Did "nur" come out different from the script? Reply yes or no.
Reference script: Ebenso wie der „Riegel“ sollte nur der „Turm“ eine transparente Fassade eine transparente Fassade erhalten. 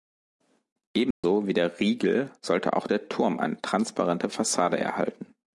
yes